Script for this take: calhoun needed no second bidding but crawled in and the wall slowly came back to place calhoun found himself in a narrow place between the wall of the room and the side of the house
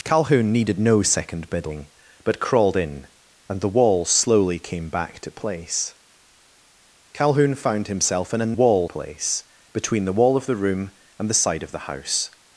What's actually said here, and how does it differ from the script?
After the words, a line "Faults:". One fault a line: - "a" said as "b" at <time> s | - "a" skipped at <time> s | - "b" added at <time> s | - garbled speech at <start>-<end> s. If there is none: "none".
calhoun needed no second bidding but crawled in and the wall slowly came back to place calhoun found himself in a wall place between the wall of the room and the side of the house
Faults:
- "narrow" said as "wall" at 8.5 s